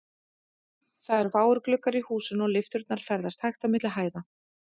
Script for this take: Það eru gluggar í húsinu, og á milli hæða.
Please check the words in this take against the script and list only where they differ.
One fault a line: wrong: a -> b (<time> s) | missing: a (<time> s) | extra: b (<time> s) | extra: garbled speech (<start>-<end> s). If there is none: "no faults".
extra: fáir (1.3 s)
extra: lyfturnar ferðast hægt (2.6 s)